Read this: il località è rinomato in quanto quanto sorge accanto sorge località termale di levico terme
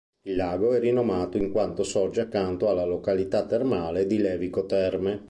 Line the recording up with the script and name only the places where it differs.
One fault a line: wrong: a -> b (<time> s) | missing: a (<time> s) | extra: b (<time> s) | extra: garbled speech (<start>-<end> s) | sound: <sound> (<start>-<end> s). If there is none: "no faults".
wrong: località -> lago (0.3 s)
missing: quanto (1.8 s)
wrong: sorge -> alla (2.7 s)